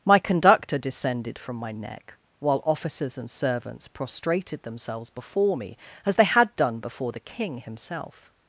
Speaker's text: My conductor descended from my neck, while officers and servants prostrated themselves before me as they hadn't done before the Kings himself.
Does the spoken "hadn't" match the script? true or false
false